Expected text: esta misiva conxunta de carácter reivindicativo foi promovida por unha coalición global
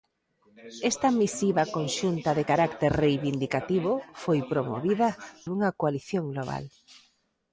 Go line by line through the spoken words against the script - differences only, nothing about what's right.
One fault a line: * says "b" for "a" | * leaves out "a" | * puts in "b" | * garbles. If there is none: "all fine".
* leaves out "por"